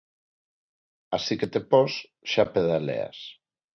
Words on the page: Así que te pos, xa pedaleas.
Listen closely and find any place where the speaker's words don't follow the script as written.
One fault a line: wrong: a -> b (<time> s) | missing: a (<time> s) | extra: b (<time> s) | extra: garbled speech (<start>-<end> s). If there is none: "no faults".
no faults